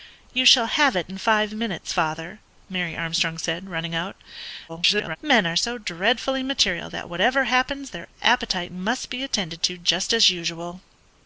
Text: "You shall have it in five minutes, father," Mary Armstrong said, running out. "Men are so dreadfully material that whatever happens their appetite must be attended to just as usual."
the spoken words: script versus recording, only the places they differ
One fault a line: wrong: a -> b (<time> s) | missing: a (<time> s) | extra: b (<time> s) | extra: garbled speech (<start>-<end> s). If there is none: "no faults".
extra: garbled speech (4.7-5.2 s)